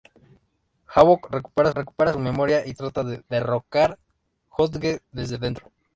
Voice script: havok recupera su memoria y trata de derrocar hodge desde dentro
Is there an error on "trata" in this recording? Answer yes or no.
no